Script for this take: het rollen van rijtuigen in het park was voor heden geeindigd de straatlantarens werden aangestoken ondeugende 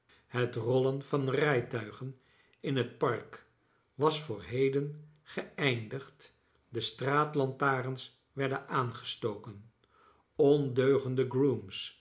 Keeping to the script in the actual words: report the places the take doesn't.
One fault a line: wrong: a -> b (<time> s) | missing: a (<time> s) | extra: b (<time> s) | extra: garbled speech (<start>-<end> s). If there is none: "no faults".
no faults